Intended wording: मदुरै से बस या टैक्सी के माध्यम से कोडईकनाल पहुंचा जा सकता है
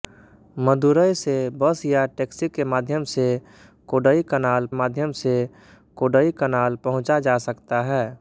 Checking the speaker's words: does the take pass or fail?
fail